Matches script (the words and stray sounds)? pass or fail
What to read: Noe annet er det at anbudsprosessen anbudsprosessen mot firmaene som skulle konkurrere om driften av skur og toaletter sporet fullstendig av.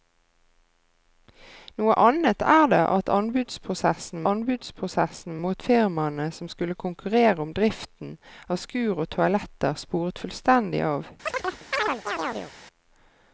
fail